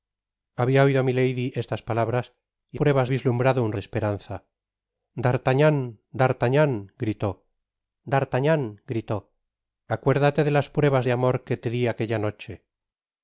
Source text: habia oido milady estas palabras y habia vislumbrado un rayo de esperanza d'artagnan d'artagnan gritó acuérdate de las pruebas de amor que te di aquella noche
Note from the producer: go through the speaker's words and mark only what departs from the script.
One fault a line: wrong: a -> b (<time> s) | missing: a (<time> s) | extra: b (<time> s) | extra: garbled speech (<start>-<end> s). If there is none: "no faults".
wrong: habia -> pruebas (2.8 s)
missing: rayo (3.7 s)
extra: d'artagnan gritó (8.1 s)